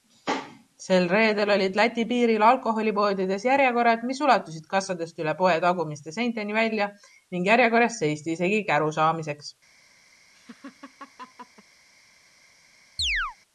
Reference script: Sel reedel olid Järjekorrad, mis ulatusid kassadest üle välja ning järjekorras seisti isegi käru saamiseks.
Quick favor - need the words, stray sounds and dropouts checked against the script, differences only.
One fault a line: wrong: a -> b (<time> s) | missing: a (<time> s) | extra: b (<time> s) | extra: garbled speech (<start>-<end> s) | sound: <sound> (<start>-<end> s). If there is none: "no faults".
extra: Läti piiril alkoholipoodides (1.8 s)
extra: poe tagumiste seinteni (5.4 s)
sound: laugh (10.3-11.6 s)
sound: chirp (13.0-13.4 s)